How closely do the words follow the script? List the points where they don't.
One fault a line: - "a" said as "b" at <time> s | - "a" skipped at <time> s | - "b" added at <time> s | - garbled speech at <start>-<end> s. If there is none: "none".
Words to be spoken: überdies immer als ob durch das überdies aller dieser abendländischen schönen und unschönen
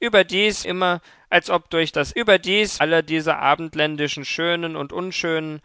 none